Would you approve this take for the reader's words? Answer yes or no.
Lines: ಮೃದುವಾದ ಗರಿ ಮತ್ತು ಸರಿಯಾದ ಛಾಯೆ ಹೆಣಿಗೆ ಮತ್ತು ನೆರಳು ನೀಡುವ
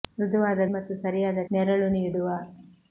no